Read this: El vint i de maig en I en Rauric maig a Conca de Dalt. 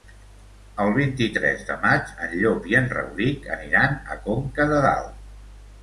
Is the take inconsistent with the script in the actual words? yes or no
yes